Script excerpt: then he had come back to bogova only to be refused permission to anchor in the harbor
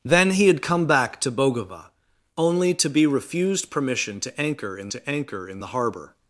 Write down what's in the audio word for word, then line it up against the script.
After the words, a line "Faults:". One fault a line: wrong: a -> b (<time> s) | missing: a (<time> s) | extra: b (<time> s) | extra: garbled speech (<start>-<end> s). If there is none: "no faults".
then he had come back to bogova only to be refused permission to anchor in to anchor in the harbor
Faults:
extra: to anchor in (4.9 s)